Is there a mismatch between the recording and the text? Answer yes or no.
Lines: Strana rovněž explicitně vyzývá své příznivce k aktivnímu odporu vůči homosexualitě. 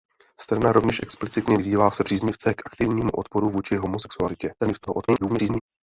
yes